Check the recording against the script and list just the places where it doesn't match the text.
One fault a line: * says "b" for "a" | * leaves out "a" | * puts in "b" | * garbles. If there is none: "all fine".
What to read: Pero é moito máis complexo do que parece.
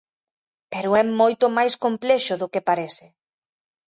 all fine